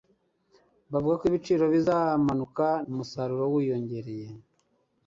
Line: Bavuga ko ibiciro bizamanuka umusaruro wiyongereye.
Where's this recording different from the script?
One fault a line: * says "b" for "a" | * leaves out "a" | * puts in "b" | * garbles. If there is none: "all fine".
all fine